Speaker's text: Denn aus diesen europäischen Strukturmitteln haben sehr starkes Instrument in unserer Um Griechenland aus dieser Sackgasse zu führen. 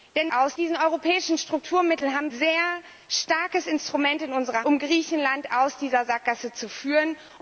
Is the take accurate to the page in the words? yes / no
yes